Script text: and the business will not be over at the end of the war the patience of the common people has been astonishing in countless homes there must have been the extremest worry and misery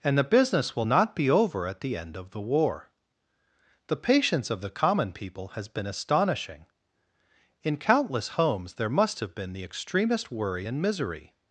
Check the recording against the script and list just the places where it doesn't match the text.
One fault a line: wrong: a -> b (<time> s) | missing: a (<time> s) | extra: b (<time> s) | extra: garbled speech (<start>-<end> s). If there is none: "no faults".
no faults